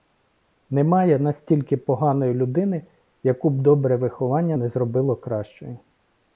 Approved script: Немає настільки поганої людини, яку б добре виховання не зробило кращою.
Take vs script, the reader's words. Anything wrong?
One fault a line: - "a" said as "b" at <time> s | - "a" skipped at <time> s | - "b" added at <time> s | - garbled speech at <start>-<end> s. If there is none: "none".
none